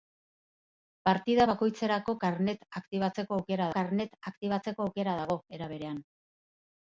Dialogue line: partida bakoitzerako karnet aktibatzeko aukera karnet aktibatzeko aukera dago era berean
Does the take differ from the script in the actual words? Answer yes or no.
no